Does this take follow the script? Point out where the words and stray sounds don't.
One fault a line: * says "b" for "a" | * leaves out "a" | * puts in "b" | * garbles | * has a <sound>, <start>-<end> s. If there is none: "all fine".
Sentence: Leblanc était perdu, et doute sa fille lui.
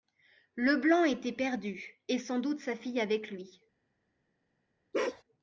* puts in "sans"
* puts in "avec"
* has a bark, 4.9-5.2 s